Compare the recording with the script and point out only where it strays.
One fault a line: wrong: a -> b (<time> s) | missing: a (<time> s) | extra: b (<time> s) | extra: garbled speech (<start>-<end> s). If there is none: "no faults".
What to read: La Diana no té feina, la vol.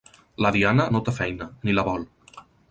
extra: ni (1.7 s)